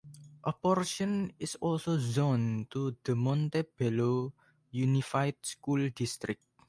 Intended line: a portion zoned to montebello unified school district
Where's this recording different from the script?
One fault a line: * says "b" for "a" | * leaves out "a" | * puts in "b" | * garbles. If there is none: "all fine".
* puts in "is also"
* puts in "the"